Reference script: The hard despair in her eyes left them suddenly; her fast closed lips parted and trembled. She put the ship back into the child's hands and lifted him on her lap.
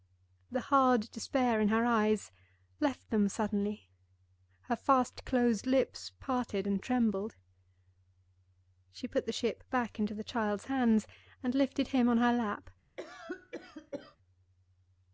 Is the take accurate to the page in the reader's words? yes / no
yes